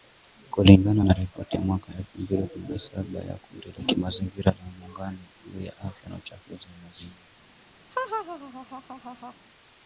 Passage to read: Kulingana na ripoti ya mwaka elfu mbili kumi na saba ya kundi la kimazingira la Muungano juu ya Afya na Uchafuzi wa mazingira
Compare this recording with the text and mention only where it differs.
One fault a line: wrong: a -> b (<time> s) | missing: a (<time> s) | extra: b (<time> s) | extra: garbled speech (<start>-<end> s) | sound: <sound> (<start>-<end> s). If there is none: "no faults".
sound: laugh (7.9-9.3 s)